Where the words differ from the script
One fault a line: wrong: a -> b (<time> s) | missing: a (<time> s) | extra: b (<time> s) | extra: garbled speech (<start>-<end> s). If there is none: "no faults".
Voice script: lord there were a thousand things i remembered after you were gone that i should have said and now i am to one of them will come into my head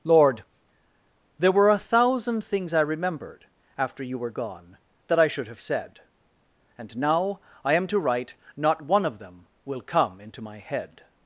extra: write not (8.0 s)